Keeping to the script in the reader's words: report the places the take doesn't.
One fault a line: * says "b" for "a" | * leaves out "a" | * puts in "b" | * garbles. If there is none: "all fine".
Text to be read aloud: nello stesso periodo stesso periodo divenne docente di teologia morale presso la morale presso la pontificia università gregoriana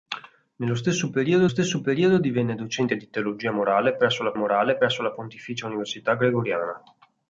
all fine